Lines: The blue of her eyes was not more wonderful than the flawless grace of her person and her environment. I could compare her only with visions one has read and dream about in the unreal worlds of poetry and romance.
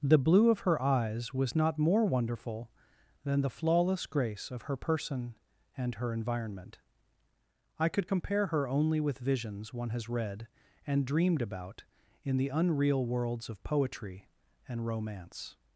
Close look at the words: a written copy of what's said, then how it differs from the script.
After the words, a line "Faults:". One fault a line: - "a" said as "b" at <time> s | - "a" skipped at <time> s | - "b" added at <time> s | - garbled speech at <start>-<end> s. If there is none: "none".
The blue of her eyes was not more wonderful than the flawless grace of her person and her environment. I could compare her only with visions one has read and dreamed about in the unreal worlds of poetry and romance.
Faults:
- "dream" said as "dreamed" at 11.0 s